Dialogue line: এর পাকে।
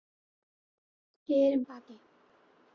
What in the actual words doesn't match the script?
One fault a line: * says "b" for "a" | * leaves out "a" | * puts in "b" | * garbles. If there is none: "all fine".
all fine